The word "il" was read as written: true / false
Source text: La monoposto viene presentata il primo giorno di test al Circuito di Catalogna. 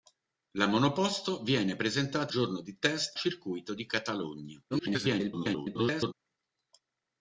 false